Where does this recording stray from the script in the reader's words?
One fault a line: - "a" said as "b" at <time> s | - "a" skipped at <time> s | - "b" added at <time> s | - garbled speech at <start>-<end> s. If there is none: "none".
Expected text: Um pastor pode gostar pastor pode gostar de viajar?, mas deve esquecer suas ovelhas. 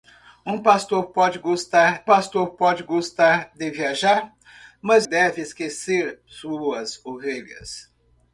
none